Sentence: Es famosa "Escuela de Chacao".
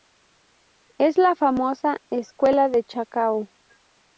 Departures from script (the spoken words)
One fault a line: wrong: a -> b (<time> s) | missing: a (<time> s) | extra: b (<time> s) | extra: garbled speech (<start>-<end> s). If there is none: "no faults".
extra: la (1.2 s)